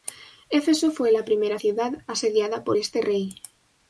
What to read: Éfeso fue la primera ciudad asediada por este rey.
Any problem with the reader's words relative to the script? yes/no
no